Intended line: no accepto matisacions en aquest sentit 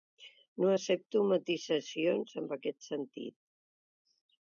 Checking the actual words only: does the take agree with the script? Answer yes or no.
yes